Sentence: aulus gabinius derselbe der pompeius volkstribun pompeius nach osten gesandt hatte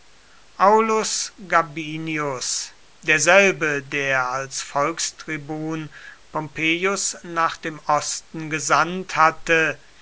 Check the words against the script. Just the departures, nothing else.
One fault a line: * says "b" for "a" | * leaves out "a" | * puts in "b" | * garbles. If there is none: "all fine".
* says "als" for "pompeius"
* puts in "dem"